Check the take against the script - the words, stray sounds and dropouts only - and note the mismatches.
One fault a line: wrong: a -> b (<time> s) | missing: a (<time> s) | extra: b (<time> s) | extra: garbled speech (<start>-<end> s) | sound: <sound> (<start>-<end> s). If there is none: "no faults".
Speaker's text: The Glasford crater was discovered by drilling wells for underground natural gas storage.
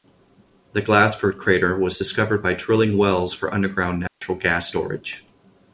sound: dropout (4.1-4.2 s)